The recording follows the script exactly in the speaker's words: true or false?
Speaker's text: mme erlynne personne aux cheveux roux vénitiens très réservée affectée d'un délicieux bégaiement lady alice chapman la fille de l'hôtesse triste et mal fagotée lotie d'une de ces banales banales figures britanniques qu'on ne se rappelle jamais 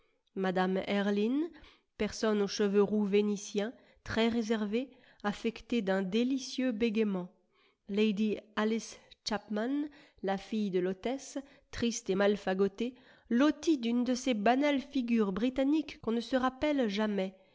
false